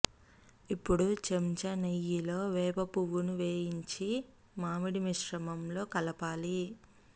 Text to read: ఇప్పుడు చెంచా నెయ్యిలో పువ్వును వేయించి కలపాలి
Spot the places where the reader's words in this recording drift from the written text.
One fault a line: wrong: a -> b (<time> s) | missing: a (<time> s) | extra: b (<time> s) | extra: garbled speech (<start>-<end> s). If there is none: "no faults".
extra: వేప (2.5 s)
extra: మామిడి మిశ్రమంలో (4.6 s)